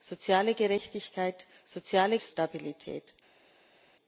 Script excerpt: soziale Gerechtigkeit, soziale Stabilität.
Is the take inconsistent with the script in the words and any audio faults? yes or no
no